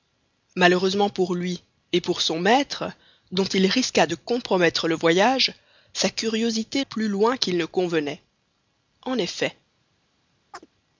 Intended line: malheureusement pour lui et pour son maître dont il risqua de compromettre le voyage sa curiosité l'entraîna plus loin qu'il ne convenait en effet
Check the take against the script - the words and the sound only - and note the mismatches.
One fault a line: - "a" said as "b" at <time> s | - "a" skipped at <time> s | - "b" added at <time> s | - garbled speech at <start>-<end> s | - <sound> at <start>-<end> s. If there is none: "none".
- "l'entraîna" skipped at 6.8 s
- chirp at 10.5-10.7 s